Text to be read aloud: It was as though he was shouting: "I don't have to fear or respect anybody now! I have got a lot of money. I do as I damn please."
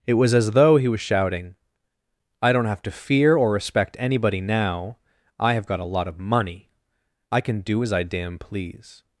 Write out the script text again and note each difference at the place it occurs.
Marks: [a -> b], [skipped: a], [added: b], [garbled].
It was as though he was shouting: "I don't have to fear or respect anybody now! I have got a lot of money. I [added: can] do as I damn please."